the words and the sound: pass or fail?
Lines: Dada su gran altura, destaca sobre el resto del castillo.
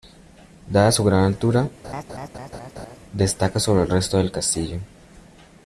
fail